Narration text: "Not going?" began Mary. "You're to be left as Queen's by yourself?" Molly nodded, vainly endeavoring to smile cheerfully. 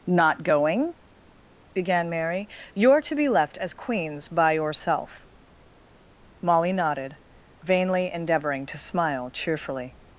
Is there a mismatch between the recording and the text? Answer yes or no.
no